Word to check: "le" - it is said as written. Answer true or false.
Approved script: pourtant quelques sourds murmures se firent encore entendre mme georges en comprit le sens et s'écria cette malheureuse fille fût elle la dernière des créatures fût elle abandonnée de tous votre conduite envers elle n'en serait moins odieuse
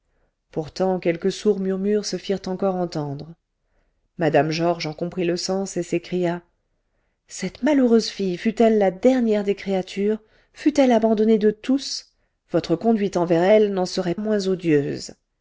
true